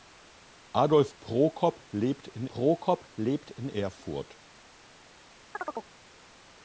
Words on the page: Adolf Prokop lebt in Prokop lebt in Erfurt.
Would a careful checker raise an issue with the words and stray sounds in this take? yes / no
yes